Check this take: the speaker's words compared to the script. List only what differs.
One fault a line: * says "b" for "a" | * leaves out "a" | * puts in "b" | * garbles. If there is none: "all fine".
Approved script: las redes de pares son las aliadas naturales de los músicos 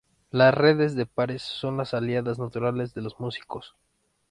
all fine